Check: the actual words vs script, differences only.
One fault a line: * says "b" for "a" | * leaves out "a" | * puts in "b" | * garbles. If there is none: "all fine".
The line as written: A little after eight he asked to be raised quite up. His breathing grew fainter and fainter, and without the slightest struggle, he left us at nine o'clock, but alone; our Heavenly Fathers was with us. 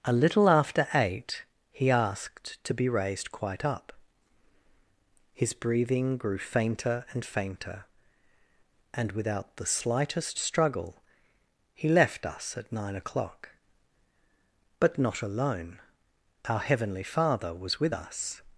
* puts in "not"
* says "Father" for "Fathers"